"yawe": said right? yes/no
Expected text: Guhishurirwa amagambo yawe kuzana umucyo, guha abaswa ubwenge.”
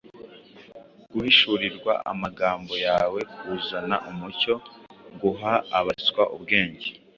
yes